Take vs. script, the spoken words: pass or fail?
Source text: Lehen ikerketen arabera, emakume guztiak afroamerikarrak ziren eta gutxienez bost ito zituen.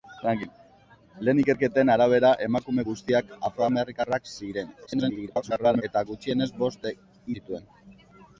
fail